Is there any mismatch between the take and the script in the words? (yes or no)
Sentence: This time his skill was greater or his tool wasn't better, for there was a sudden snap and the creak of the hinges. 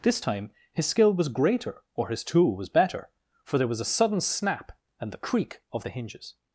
yes